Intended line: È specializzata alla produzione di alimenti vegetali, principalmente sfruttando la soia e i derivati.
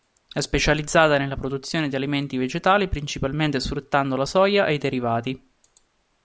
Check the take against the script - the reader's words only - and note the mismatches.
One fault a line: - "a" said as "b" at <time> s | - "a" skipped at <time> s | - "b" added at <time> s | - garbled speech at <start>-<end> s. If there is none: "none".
- "alla" said as "nella" at 1.2 s